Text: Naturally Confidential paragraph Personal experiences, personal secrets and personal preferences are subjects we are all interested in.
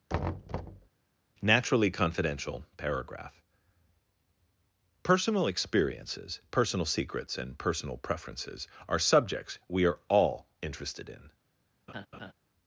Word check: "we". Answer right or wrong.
right